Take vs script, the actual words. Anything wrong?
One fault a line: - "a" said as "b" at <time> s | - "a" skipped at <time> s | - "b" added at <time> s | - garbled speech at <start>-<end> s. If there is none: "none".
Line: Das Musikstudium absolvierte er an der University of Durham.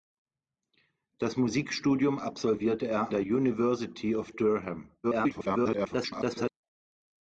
- "an" skipped at 3.1 s
- garbled speech at 5.0-6.5 s